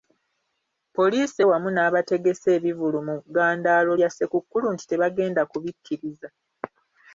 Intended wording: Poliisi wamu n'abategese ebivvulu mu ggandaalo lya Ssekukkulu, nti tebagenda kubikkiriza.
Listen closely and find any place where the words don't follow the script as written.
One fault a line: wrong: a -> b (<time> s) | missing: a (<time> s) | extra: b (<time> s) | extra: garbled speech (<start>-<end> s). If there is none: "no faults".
no faults